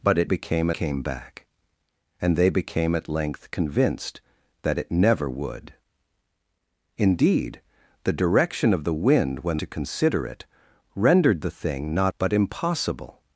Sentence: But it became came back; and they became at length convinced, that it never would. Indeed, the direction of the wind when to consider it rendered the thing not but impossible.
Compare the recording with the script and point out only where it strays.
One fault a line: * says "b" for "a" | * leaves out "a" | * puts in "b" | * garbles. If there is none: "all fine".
all fine